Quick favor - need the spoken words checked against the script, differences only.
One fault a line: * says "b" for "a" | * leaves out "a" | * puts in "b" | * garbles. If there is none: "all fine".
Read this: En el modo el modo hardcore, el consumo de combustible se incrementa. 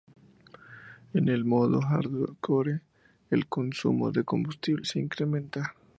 * leaves out "el modo"